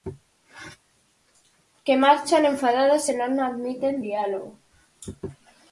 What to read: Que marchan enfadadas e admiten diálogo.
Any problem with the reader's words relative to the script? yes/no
yes